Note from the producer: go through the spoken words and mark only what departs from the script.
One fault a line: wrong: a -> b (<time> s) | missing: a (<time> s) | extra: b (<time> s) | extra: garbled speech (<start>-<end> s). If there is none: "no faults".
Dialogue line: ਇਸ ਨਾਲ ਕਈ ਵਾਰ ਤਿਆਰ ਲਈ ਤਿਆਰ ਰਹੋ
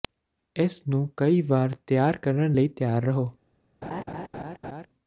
wrong: ਨਾਲ -> ਨੂੰ (0.9 s)
extra: ਕਰਨ (2.2 s)